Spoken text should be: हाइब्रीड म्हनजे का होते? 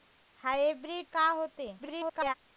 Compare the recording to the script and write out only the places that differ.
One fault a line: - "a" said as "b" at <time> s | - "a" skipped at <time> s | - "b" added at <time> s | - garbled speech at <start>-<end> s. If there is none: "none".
- "म्हनजे" skipped at 1.1 s
- garbled speech at 1.8-2.3 s